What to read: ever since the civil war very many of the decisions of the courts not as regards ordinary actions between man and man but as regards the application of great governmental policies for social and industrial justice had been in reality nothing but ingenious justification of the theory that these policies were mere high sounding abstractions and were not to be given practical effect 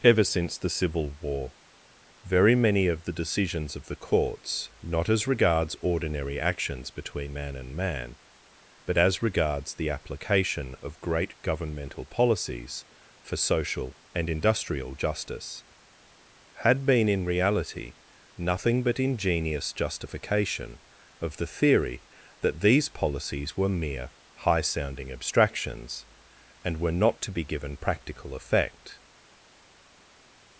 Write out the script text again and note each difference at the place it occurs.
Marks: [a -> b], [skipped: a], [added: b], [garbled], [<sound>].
ever since the civil war very many of the decisions of the courts not as regards ordinary actions between man and man but as regards the application of great governmental policies for social and industrial justice had been in reality nothing but ingenious justification of the theory that these policies were mere high sounding abstractions and were not to be given practical effect